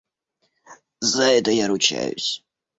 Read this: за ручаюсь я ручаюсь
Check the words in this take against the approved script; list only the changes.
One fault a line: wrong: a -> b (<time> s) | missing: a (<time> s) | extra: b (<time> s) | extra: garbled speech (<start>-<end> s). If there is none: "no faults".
wrong: ручаюсь -> это (1.2 s)